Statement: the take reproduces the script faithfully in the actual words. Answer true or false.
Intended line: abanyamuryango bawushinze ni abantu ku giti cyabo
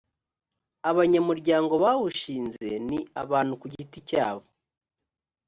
true